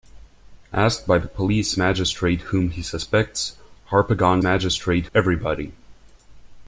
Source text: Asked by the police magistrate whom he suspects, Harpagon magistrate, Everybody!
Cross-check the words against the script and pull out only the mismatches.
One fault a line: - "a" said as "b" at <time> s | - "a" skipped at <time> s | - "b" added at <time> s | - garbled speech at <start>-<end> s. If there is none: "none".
none